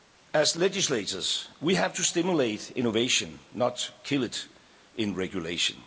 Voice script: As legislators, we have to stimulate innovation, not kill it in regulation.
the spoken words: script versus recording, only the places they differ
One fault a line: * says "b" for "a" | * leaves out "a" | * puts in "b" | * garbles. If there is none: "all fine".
all fine